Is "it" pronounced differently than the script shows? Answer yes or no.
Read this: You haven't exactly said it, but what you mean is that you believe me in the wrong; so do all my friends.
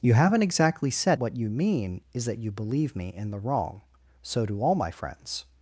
yes